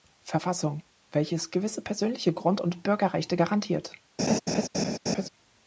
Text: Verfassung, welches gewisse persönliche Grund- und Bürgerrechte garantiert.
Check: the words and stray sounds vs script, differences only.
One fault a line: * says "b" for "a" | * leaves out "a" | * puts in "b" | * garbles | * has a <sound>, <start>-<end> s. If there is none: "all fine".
* has a laugh, 4.2-5.3 s